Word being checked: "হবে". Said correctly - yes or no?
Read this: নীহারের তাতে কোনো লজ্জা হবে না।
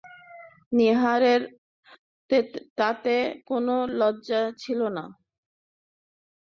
no